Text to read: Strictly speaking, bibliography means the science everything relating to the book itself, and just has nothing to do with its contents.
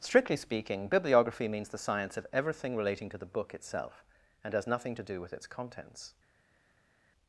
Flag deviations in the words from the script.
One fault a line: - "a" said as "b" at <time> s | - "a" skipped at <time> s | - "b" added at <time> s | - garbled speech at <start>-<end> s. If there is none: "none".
- "of" added at 2.2 s
- "just" skipped at 4.5 s